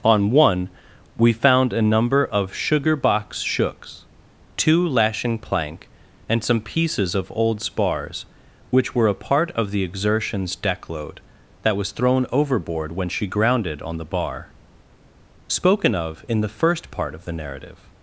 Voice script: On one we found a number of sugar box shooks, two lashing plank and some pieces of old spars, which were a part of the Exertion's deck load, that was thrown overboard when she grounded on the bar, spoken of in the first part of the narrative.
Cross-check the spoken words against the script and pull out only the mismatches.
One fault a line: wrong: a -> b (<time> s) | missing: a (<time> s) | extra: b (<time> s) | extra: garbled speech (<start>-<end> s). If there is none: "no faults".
no faults